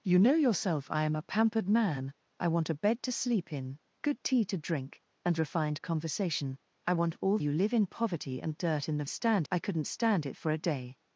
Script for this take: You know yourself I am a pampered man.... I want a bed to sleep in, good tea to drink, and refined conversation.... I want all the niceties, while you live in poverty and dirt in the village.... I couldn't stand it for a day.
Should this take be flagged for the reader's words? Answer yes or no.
yes